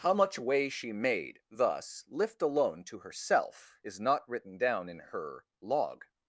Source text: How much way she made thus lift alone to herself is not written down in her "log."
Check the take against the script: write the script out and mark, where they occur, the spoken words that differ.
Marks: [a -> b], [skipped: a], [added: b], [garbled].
How much way she made thus lift alone to herself is not written down in her "log."